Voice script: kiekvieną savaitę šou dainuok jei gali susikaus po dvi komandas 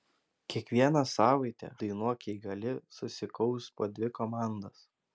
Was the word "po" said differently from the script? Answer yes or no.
no